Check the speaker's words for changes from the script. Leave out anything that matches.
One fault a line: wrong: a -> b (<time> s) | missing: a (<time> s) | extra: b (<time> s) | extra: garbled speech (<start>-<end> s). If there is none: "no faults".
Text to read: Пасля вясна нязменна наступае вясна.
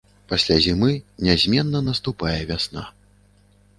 wrong: вясна -> зімы (0.7 s)